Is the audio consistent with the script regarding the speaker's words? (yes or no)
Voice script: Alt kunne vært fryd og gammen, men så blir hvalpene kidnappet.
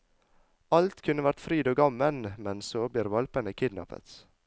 yes